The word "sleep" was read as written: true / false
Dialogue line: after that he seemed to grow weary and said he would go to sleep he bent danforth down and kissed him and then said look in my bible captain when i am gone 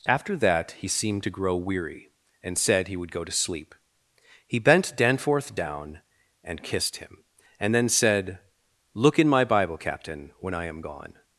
true